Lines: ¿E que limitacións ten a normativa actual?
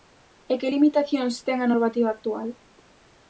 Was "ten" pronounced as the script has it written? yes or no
yes